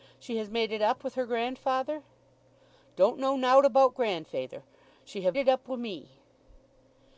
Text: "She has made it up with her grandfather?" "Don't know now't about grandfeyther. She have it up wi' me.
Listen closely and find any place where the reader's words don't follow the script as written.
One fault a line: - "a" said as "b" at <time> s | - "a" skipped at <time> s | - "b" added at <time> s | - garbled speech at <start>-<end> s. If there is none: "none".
none